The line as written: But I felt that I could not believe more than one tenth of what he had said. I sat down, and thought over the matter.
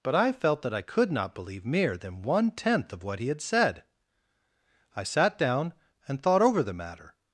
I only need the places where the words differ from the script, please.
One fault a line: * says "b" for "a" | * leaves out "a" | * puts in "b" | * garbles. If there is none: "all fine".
* says "mere" for "more"